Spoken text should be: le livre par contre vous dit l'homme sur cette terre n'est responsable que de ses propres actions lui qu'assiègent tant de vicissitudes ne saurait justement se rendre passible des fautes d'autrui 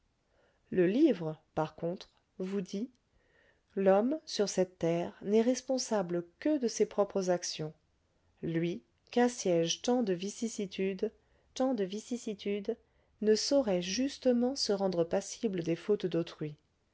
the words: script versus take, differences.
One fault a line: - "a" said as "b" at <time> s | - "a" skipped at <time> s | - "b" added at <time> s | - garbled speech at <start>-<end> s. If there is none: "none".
- "tant de vicissitudes" added at 11.6 s